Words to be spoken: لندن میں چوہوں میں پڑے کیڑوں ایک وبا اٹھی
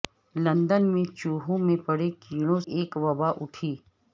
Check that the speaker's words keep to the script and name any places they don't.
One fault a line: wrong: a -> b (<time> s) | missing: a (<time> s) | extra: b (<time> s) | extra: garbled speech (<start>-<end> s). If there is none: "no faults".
no faults